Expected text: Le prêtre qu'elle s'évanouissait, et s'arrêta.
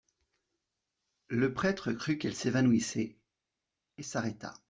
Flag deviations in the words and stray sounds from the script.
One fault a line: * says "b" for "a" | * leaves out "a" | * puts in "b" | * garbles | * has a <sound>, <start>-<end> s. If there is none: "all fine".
* puts in "crut"